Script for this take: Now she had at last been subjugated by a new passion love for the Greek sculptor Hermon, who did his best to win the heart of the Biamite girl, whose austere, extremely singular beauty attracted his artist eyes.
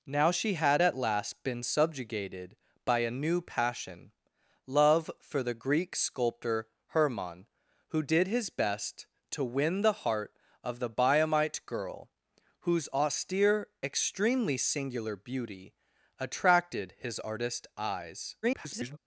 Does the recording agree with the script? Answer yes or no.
no